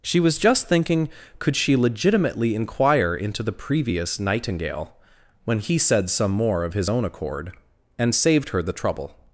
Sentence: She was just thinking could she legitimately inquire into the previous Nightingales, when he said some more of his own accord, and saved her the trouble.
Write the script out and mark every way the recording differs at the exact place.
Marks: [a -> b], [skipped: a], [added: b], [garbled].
She was just thinking could she legitimately inquire into the previous [Nightingales, -> Nightingale] when he said some more of his own accord, and saved her the trouble.